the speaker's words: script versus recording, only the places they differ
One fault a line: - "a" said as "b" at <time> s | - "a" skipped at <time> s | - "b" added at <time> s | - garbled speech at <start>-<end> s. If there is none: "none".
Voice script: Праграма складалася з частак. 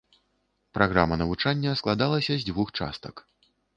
- "навучання" added at 1.2 s
- "дзвюх" added at 2.5 s